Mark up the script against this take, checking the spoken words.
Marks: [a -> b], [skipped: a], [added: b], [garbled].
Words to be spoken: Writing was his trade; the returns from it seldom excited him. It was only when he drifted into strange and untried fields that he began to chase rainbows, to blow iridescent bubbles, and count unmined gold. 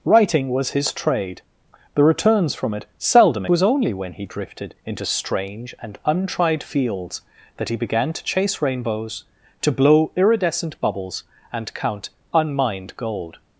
Writing was his trade; the returns from it seldom [skipped: excited him. It] was only when he drifted into strange and untried fields that he began to chase rainbows, to blow iridescent bubbles, and count unmined gold.